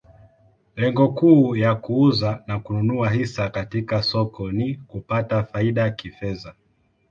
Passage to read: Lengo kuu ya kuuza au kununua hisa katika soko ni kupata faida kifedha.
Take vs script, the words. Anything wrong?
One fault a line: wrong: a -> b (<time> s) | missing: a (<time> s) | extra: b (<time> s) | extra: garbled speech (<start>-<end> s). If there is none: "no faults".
wrong: au -> na (2.5 s)